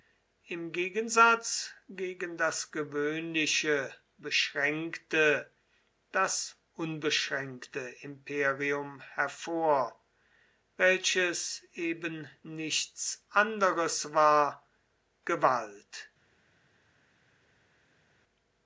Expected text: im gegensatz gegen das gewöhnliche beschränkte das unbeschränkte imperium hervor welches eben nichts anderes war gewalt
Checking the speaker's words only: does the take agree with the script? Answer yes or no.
yes